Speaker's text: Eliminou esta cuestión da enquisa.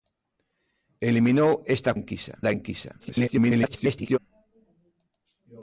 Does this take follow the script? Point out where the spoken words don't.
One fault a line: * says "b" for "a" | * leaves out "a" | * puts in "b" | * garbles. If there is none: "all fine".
* says "enquisa" for "cuestión"
* garbles